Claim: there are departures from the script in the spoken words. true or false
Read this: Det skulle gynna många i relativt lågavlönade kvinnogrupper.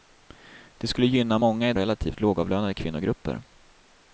false